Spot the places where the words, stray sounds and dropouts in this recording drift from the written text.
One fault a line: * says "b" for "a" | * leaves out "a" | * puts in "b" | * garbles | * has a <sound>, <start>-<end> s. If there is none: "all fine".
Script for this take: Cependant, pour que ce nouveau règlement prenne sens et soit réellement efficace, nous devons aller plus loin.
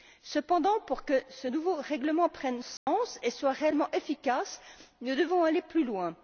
* has a dropout, 2.8-2.9 s